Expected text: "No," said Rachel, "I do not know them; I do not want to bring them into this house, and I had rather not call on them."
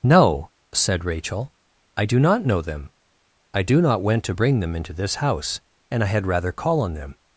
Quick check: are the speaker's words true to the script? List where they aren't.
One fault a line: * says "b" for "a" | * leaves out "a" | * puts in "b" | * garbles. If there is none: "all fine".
* says "went" for "want"
* leaves out "not"